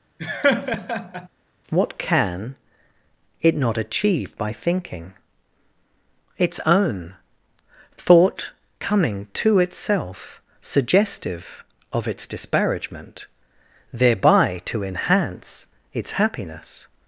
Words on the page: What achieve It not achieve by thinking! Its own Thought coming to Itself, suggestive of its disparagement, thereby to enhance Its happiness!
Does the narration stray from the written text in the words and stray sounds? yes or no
yes